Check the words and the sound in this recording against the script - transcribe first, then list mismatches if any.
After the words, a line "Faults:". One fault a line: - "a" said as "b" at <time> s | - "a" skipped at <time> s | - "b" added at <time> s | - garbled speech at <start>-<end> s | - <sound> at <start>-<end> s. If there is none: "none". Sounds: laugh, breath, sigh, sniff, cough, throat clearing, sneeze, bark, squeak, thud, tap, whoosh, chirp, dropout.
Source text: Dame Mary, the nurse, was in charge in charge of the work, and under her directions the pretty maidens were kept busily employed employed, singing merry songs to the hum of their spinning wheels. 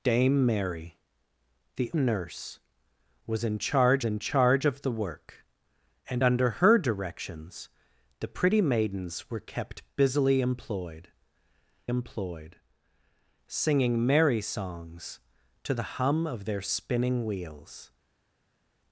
Dame Mary, the nurse, was in charge in charge of the work, and under her directions the pretty maidens were kept busily employed employed, singing merry songs to the hum of their spinning wheels.
Faults:
none